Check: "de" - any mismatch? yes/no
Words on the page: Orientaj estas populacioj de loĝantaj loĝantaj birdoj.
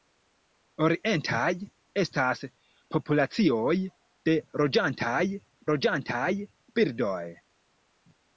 no